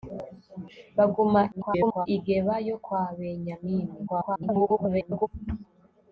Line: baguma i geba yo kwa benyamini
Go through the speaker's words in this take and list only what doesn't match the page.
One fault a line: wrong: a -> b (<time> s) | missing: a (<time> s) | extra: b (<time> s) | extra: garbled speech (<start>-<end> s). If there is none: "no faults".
extra: garbled speech (1.5-2.1 s)
extra: garbled speech (4.1-5.3 s)